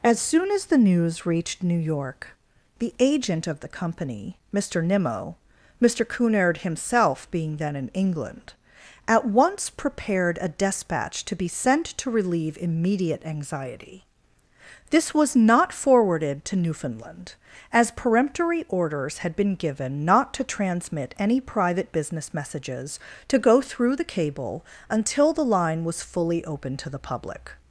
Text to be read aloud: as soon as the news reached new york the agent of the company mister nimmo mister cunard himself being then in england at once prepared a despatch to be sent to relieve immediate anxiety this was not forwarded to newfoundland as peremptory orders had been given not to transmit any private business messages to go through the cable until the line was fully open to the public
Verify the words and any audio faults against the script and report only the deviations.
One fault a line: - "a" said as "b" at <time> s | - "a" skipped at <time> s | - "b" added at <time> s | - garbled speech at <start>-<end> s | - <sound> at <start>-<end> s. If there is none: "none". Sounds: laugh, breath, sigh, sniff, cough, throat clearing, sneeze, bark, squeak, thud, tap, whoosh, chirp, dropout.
none